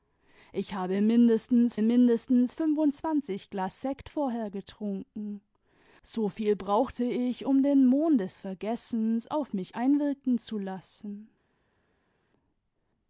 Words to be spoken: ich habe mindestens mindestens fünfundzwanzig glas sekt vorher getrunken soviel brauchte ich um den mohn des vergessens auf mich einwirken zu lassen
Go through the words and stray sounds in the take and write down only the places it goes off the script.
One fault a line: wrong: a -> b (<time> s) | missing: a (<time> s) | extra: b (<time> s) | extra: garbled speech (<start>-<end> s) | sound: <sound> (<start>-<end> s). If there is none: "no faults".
no faults